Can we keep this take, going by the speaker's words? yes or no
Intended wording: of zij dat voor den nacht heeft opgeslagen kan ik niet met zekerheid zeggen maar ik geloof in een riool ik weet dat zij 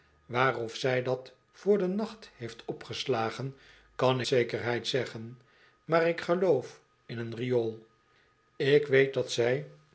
no